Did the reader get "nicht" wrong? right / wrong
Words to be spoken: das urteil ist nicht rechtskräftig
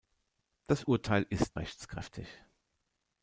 wrong